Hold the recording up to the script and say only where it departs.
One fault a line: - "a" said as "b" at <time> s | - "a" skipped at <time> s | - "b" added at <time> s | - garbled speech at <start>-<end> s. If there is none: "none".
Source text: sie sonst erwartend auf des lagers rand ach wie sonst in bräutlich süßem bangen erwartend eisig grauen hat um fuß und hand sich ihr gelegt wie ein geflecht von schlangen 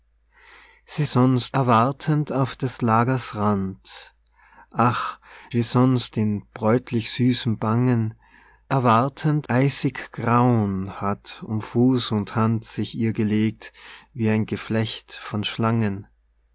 none